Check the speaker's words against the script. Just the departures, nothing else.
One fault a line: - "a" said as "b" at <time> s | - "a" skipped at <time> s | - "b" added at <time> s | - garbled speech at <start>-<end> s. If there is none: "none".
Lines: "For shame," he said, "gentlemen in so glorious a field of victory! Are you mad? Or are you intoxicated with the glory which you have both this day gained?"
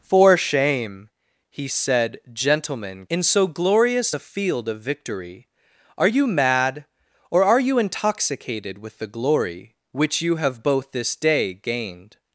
none